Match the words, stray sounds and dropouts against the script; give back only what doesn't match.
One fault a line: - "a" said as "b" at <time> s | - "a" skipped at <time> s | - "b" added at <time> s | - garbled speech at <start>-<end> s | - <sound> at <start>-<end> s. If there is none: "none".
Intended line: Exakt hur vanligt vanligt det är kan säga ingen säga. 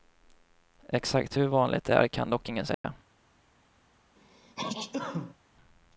- "vanligt" skipped at 1.8 s
- "säga" said as "dock" at 2.3 s
- dropout at 2.7-2.8 s
- sneeze at 4.2-5.4 s